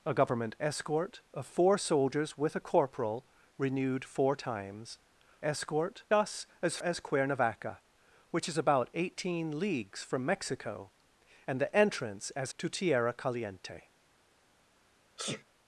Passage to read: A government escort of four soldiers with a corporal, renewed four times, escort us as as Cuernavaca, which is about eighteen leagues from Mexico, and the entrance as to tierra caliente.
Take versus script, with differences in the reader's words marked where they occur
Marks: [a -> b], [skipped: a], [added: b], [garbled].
A government escort of four soldiers with a corporal, renewed four times, escort us as as Cuernavaca, which is about eighteen leagues from Mexico, and the entrance as to tierra caliente.